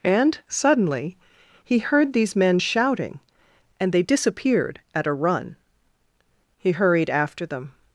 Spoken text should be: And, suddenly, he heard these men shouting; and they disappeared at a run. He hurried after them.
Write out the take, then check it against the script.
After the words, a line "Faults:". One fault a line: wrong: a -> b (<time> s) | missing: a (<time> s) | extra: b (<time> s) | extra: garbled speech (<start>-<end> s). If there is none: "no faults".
And, suddenly, he heard these men shouting; and they disappeared at a run. He hurried after them.
Faults:
no faults